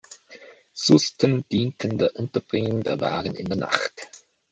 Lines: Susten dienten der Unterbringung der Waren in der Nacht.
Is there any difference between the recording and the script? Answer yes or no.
no